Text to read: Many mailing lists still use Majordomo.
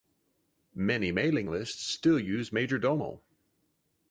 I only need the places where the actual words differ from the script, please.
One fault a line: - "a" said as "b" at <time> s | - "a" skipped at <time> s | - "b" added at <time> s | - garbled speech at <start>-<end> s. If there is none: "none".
none